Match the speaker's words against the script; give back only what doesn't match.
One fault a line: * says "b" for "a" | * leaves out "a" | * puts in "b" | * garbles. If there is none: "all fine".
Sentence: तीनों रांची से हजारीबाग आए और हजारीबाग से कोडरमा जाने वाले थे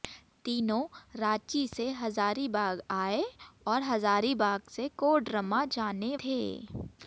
* leaves out "वाले"